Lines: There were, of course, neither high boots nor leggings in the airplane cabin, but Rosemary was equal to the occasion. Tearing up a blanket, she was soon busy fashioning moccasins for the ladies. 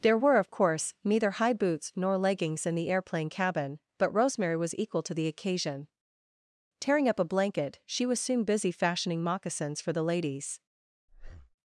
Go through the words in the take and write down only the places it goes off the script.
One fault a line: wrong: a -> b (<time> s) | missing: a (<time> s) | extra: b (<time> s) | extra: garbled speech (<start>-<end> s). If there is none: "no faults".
no faults